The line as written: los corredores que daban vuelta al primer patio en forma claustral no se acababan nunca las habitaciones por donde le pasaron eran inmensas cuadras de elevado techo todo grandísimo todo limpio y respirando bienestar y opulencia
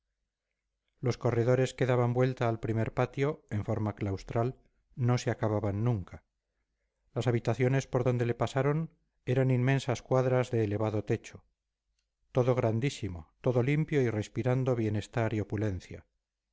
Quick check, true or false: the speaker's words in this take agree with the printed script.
true